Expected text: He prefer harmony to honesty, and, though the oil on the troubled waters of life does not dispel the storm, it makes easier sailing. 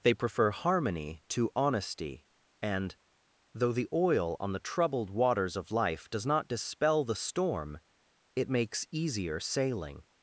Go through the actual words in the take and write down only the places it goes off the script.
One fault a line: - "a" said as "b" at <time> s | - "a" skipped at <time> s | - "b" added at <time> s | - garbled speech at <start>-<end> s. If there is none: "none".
- "He" said as "They" at 0.0 s